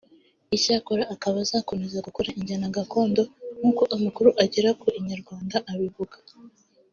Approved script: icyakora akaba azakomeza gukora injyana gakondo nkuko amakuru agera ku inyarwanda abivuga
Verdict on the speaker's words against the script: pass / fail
pass